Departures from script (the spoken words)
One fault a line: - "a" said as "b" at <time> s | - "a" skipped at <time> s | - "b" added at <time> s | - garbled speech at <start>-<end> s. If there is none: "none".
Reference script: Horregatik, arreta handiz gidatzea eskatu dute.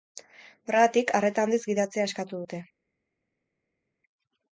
none